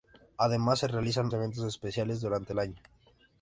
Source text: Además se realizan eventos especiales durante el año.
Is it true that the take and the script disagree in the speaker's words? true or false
false